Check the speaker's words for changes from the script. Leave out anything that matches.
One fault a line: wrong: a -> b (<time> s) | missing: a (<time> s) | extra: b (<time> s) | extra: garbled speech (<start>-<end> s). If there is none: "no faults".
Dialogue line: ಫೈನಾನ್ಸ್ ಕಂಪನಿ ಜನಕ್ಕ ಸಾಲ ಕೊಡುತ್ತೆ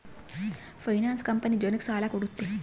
no faults